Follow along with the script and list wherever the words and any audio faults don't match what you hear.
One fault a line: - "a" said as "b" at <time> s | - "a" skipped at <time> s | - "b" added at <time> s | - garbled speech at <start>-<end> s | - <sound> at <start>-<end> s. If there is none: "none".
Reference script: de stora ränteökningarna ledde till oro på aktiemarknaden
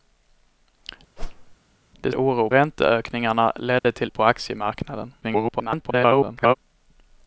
- whoosh at 1.2-1.6 s
- "stora" said as "oro" at 2.1 s
- dropout at 3.8-3.8 s
- "oro" skipped at 4.1 s
- garbled speech at 5.2-6.5 s